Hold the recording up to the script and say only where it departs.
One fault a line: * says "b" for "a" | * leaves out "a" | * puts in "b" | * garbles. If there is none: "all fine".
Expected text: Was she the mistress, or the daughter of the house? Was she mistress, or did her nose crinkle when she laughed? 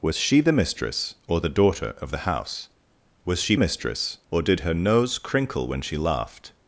all fine